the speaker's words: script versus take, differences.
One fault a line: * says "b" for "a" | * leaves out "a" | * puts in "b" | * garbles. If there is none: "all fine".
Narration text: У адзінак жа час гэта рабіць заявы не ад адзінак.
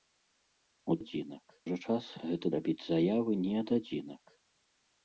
all fine